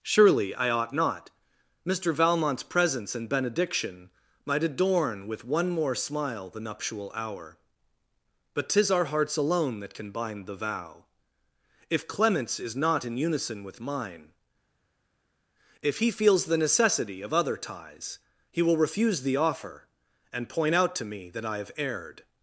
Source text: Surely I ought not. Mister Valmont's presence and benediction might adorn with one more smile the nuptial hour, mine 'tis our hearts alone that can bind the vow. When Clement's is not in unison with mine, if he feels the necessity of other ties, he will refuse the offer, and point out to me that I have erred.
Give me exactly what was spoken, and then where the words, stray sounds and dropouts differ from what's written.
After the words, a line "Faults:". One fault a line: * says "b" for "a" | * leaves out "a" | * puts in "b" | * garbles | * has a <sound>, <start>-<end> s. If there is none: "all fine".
Surely I ought not. Mister Valmont's presence and benediction might adorn with one more smile the nuptial hour, but 'tis our hearts alone that can bind the vow. If Clement's is not in unison with mine, if he feels the necessity of other ties, he will refuse the offer, and point out to me that I have erred.
Faults:
* says "but" for "mine"
* says "If" for "When"